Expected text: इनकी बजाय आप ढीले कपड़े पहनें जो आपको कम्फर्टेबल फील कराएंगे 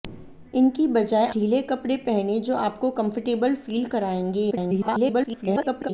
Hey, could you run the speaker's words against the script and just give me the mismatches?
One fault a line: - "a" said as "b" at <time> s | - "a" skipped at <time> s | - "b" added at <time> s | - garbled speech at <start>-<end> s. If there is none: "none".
- "आप" skipped at 1.3 s
- garbled speech at 4.5-5.9 s